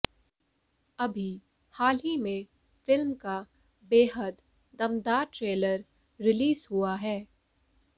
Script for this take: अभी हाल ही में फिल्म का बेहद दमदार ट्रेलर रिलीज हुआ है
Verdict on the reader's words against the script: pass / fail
pass